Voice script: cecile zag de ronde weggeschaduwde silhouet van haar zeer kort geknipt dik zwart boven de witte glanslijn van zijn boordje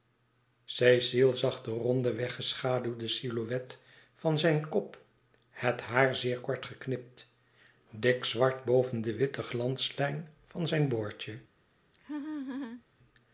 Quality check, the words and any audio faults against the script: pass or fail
fail